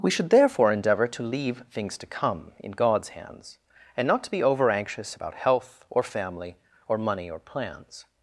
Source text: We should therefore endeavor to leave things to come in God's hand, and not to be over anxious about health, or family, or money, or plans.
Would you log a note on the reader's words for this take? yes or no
yes